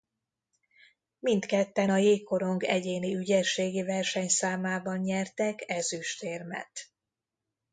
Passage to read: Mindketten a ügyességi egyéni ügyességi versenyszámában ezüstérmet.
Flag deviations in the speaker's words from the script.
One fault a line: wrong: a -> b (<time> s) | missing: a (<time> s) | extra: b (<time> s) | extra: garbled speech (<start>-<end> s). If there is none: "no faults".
wrong: ügyességi -> jégkorong (2.0 s)
extra: nyertek (5.0 s)